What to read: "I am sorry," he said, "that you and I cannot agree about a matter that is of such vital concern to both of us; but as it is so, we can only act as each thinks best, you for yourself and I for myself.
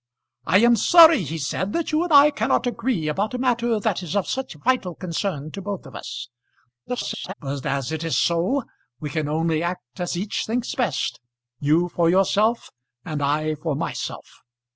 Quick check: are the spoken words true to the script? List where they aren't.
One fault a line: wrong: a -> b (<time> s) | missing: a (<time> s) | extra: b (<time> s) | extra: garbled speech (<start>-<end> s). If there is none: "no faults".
extra: garbled speech (6.9-7.3 s)